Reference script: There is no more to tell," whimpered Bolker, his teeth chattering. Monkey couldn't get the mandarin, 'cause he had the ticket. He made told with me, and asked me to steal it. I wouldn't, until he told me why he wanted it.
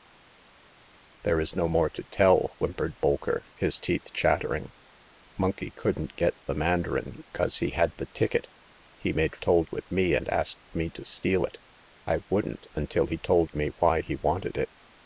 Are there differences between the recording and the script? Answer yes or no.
no